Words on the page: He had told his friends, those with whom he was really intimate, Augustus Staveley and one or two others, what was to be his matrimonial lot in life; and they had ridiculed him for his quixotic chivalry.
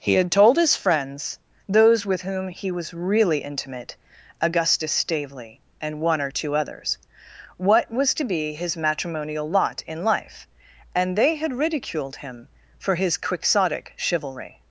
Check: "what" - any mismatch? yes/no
no